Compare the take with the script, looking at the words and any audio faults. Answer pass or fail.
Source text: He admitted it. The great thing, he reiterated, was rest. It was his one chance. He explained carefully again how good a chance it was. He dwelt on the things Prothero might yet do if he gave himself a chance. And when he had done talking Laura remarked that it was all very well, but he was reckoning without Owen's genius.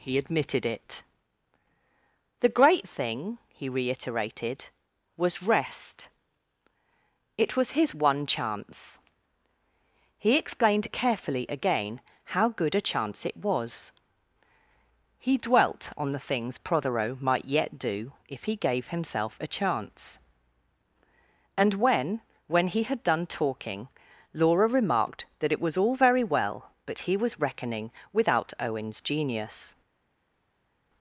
fail